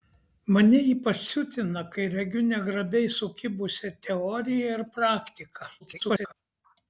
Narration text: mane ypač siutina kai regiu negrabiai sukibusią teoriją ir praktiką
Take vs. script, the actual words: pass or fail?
fail